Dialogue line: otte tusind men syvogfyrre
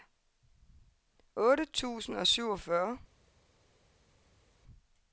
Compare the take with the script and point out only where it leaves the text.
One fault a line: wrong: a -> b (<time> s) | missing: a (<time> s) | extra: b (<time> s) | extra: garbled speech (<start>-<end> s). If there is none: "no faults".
wrong: men -> og (2.2 s)